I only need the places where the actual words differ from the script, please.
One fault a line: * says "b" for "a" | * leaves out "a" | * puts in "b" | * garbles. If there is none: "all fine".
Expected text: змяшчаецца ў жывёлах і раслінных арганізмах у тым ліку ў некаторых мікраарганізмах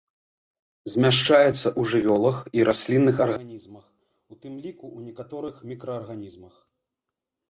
all fine